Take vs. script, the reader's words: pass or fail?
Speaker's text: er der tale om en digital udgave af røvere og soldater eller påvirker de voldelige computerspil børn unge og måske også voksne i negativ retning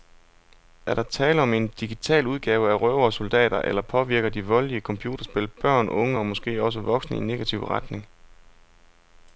pass